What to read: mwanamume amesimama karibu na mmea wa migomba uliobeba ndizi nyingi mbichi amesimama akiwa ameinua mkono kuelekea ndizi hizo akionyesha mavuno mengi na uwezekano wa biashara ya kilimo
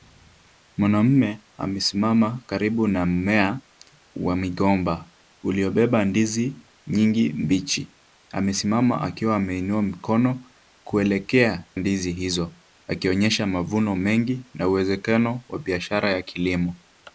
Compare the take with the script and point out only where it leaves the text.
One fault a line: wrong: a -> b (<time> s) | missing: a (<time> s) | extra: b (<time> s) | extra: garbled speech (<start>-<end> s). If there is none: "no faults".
no faults